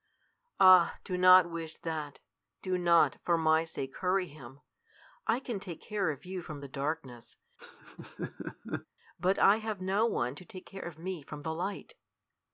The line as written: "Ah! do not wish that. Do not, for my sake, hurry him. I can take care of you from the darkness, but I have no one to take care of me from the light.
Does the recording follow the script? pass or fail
pass